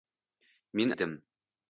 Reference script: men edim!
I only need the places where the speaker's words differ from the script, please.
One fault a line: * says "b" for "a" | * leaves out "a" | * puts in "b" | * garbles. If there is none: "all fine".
all fine